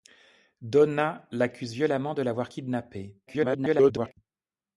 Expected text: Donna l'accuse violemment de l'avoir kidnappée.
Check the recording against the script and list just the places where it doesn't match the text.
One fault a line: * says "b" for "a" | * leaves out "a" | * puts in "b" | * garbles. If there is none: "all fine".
* garbles